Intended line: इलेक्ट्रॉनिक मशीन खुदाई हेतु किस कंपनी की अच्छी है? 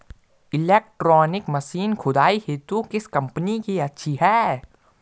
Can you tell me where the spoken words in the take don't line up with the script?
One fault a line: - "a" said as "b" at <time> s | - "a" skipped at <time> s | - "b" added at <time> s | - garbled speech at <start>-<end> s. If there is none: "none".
none